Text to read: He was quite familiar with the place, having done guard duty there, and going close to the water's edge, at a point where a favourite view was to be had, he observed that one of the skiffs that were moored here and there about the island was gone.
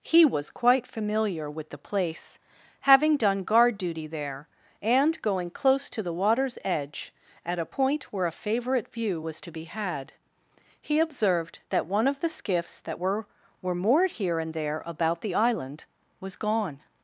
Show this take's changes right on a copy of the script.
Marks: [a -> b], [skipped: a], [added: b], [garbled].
He was quite familiar with the place, having done guard duty there, and going close to the water's edge, at a point where a favourite view was to be had, he observed that one of the skiffs that were [added: were] moored here and there about the island was gone.